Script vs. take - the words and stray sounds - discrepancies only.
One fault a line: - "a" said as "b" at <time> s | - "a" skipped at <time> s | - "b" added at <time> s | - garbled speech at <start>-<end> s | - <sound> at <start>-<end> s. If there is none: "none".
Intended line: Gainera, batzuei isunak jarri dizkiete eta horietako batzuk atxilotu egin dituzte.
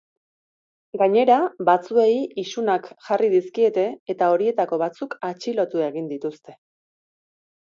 none